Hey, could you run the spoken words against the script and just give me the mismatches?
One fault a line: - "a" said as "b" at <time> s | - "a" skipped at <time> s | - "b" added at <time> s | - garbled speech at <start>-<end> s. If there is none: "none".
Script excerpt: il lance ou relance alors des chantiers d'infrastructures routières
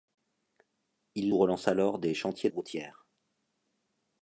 - "lance" skipped at 1.3 s
- "d'infrastructures" skipped at 2.5 s